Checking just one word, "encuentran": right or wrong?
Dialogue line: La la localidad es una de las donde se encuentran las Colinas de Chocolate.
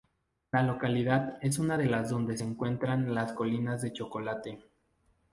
right